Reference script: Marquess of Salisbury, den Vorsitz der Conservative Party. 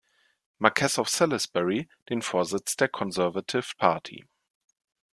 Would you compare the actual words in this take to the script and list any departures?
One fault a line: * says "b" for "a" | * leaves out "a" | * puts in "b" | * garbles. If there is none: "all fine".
all fine